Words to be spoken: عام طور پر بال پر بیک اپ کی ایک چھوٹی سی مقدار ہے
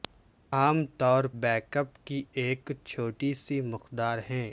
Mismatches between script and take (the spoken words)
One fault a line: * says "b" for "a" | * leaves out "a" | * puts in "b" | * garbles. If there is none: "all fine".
* leaves out "پر بال پر"